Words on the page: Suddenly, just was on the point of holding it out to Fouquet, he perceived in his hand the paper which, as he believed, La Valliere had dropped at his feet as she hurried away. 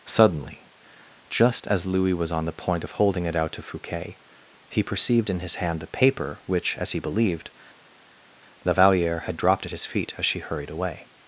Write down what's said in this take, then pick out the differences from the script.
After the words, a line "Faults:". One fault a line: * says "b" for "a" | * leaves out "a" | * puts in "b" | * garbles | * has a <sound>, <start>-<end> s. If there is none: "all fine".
Suddenly, just as Louis was on the point of holding it out to Fouquet, he perceived in his hand the paper which, as he believed, La Valliere had dropped at his feet as she hurried away.
Faults:
* puts in "as Louis"